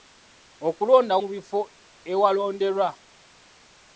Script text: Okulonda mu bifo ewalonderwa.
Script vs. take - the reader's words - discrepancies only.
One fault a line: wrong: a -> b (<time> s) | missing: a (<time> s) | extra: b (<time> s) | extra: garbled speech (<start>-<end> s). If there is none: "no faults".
no faults